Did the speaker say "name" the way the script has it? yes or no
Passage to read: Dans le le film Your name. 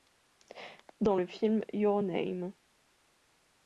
yes